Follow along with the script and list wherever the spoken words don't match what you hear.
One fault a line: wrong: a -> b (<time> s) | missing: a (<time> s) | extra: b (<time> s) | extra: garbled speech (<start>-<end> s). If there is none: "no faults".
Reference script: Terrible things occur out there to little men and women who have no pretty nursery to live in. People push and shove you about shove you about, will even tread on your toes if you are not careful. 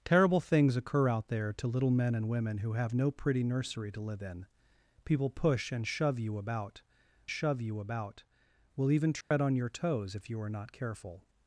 no faults